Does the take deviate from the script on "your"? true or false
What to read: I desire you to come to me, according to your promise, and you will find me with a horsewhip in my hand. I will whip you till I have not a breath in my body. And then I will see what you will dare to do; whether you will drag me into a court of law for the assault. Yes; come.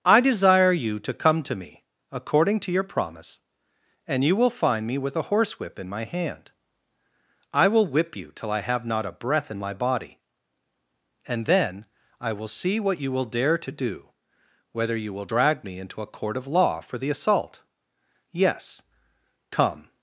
false